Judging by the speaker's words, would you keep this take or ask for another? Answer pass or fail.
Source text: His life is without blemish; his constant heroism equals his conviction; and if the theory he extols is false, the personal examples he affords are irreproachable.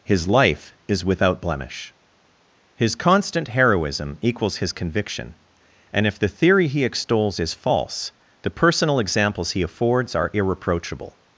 pass